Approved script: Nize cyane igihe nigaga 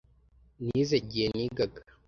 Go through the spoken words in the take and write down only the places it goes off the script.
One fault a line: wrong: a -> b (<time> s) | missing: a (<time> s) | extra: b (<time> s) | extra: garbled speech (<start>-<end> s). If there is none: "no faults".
missing: cyane (1.0 s)